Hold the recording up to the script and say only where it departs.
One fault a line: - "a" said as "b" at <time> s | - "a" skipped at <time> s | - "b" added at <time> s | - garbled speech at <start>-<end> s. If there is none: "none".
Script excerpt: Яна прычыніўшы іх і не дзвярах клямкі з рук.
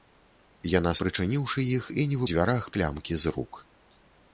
none